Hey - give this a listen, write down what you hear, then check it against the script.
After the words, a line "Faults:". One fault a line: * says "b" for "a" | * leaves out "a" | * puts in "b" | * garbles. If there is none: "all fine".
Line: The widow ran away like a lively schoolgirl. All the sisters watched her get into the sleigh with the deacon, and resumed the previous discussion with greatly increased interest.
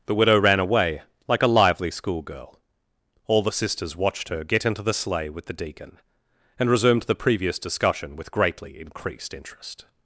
The widow ran away like a lively schoolgirl. All the sisters watched her get into the sleigh with the deacon, and resumed the previous discussion with greatly increased interest.
Faults:
all fine